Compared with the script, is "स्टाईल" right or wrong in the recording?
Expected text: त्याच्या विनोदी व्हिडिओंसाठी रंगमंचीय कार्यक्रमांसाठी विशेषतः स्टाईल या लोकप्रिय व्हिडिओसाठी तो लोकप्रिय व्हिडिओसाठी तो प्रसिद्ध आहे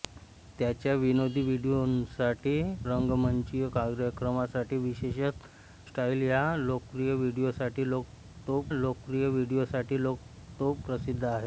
right